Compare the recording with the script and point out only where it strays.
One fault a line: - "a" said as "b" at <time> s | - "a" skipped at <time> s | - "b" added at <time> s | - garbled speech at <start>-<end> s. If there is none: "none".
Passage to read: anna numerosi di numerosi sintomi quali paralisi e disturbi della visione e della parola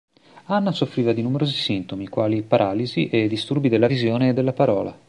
- "numerosi" said as "soffriva" at 0.7 s